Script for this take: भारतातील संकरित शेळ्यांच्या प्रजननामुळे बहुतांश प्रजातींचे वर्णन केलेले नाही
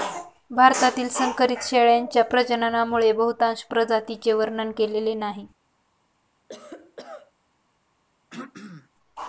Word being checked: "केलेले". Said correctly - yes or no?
yes